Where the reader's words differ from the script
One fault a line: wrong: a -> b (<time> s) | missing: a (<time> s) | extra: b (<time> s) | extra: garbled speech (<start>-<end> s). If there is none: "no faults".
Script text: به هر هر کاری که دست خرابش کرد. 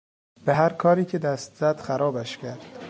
missing: هر (0.7 s)
extra: زد (1.6 s)